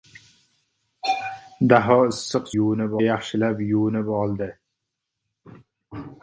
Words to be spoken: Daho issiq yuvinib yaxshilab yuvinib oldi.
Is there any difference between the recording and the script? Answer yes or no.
no